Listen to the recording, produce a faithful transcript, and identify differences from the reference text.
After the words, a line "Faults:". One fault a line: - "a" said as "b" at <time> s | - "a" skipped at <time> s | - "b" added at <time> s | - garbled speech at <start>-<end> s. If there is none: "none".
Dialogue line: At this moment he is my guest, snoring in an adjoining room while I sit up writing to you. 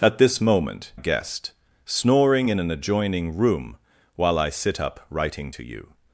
At this moment guest, snoring in an adjoining room while I sit up writing to you.
Faults:
- "he is my" skipped at 0.9 s